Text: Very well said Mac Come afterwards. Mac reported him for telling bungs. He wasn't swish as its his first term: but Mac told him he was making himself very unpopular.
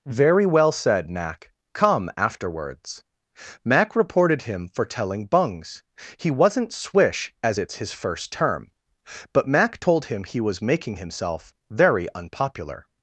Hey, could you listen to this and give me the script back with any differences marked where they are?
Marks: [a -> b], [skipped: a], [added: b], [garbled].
Very well said Mac Come afterwards. Mac reported him for telling bungs. He wasn't swish as its his first term: but Mac told him he was making himself very unpopular.